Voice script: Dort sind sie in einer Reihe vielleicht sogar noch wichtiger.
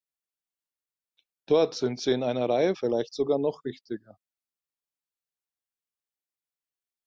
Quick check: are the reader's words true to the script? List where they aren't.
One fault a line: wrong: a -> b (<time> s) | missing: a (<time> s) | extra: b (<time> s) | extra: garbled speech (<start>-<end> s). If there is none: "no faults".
no faults